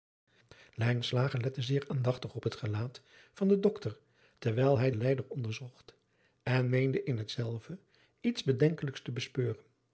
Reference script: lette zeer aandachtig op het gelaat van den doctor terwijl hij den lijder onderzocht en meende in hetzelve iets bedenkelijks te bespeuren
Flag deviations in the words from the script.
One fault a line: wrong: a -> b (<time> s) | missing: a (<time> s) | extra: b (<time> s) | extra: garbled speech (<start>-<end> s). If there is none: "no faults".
no faults